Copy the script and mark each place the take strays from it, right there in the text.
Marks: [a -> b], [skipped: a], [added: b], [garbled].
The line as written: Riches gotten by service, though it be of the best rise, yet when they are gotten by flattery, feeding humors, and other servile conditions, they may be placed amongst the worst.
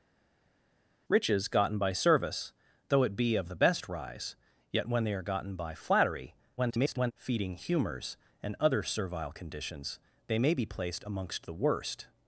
Riches gotten by service, though it be of the best rise, yet when they are gotten by flattery, [garbled] feeding humors, and other servile conditions, they may be placed amongst the worst.